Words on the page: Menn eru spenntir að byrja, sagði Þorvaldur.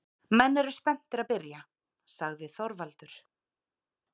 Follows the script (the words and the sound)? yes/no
yes